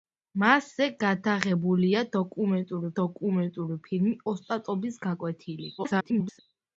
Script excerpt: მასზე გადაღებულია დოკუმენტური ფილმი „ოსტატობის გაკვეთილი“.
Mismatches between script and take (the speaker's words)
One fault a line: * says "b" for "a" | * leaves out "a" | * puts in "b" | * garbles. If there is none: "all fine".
* puts in "დოკუმენტური"
* garbles